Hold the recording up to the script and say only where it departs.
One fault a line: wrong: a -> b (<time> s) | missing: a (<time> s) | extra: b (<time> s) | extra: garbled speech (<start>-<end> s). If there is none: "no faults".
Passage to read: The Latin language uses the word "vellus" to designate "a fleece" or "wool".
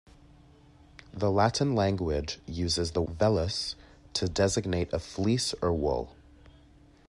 missing: word (3.0 s)